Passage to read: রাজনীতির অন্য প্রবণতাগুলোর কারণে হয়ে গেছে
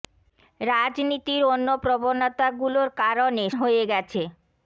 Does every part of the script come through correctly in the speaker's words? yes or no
yes